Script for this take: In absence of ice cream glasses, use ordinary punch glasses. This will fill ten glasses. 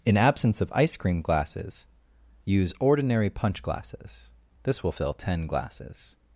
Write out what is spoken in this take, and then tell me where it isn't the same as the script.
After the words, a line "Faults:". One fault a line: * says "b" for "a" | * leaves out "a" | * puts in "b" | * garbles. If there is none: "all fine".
In absence of ice cream glasses, use ordinary punch glasses. This will fill ten glasses.
Faults:
all fine